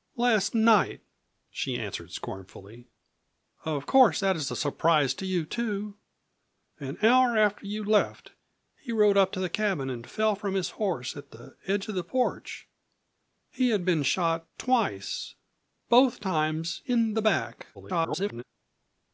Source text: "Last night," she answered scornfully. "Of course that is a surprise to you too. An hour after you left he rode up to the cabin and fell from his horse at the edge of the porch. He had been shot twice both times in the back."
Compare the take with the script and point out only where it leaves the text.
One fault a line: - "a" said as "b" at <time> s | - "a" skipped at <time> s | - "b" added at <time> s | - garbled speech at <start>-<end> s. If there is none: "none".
- garbled speech at 17.7-18.4 s